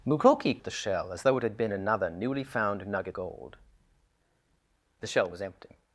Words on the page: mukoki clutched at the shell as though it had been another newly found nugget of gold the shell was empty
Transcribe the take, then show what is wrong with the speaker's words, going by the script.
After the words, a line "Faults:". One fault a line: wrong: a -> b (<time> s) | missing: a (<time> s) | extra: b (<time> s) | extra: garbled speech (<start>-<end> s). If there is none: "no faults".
mukoki at the shell as though it had been another newly found nugget gold the shell was empty
Faults:
missing: clutched (0.6 s)
missing: of (3.2 s)